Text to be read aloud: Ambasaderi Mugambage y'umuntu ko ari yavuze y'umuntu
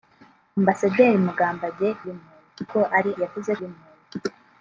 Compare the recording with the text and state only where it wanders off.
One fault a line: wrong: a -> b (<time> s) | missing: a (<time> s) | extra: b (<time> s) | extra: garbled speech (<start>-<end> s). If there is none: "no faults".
no faults